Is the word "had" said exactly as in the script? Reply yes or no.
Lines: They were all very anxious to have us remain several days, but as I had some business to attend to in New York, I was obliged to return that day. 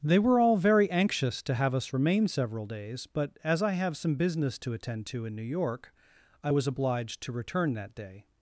no